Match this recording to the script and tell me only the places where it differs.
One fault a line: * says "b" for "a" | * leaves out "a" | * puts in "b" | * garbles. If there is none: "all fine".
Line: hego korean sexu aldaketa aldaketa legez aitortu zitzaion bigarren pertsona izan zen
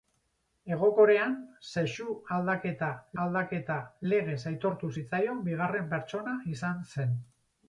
all fine